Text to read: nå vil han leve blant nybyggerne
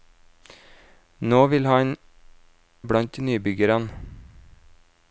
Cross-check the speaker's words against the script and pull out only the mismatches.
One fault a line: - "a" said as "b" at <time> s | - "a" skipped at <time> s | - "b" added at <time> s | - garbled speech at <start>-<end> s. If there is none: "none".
- "leve" skipped at 1.9 s